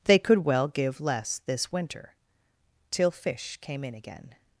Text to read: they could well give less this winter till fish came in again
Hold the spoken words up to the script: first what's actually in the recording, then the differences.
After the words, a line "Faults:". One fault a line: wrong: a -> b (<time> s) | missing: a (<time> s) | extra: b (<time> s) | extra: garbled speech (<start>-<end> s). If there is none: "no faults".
they could well give less this winter till fish came in again
Faults:
no faults